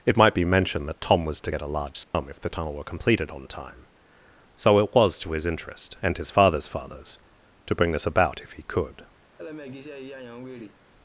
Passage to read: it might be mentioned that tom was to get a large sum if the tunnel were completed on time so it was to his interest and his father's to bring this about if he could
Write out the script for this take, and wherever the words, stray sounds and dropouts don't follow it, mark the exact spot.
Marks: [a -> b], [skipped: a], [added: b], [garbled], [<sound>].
it might be mentioned that tom was to get a large sum [dropout] if the tunnel were completed on time so it was to his interest and his father's [added: father's] to bring this about if he could [laugh]